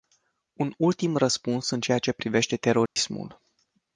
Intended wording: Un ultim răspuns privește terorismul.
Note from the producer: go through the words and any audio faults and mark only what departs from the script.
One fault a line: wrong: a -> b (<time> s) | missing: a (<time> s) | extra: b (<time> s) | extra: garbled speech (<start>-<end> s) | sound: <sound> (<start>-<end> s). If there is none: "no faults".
extra: în ceea ce (1.7 s)
sound: dropout (2.9-3.0 s)